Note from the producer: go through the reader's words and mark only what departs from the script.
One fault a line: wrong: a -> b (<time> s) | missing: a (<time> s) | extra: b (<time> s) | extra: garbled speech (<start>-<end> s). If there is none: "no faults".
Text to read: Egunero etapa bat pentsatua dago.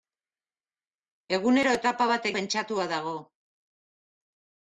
no faults